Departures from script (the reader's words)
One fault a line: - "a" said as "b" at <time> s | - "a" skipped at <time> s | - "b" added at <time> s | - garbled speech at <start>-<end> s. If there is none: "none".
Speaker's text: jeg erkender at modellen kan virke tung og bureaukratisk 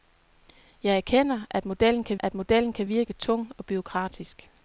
- "at modellen kan" added at 2.2 s